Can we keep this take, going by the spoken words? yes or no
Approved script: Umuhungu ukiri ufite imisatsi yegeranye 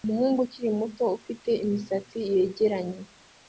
no